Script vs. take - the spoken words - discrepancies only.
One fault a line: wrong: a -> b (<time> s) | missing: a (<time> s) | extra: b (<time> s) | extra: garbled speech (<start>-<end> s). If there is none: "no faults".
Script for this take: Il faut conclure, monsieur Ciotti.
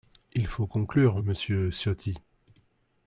no faults